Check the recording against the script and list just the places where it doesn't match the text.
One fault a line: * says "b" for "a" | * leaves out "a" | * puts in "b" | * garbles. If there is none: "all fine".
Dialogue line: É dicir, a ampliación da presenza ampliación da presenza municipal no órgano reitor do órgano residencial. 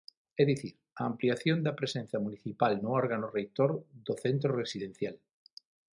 * leaves out "ampliación da presenza"
* says "centro" for "órgano"